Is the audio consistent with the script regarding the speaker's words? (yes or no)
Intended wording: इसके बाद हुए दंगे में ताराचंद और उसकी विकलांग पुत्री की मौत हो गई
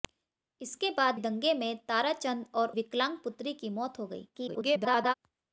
no